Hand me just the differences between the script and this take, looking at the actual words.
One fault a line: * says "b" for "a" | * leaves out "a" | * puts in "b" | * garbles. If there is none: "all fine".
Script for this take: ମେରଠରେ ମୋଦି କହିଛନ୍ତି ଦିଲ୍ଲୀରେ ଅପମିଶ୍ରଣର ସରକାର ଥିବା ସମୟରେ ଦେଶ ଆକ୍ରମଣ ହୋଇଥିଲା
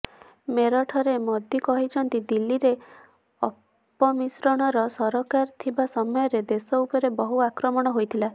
* puts in "ଉପରେ ବହୁ"